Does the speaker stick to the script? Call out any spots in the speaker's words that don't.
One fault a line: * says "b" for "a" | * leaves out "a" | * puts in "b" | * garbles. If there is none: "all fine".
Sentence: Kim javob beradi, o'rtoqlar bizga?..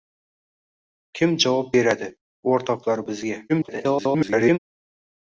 * garbles